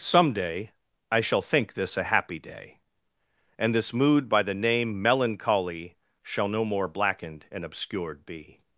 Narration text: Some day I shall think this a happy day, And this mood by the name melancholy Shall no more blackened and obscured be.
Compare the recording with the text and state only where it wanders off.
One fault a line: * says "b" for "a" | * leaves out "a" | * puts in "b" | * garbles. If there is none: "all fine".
all fine